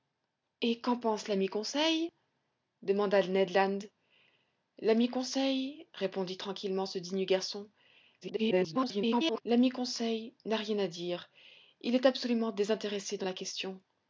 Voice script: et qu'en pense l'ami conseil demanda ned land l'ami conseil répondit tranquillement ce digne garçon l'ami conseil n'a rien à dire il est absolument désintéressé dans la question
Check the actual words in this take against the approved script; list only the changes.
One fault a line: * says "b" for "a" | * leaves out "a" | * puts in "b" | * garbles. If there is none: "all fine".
* garbles